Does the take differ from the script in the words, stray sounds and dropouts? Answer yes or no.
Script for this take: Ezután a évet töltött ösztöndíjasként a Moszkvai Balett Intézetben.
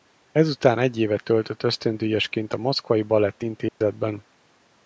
yes